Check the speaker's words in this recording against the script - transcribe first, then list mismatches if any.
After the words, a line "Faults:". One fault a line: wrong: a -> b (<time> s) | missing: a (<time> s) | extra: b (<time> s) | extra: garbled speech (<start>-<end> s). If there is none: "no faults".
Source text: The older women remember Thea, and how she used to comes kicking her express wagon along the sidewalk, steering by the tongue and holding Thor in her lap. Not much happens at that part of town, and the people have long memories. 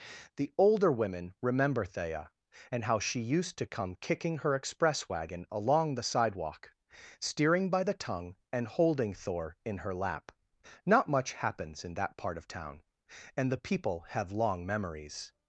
The older women remember Thea, and how she used to come kicking her express wagon along the sidewalk, steering by the tongue and holding Thor in her lap. Not much happens in that part of town, and the people have long memories.
Faults:
wrong: comes -> come (3.7 s)
wrong: at -> in (11.8 s)